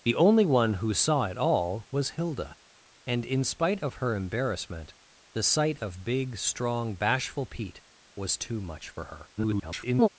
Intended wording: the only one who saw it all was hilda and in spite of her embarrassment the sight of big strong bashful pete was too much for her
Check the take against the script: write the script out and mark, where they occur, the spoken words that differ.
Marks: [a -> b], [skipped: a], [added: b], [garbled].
the only one who saw it all was hilda and in spite of her embarrassment the sight of big strong bashful pete was too much for her [garbled]